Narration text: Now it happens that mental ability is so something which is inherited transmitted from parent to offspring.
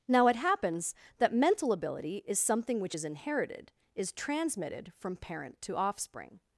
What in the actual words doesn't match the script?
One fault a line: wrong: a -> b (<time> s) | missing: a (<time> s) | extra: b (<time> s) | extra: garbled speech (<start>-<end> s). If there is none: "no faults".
missing: so (2.4 s)
extra: is (3.9 s)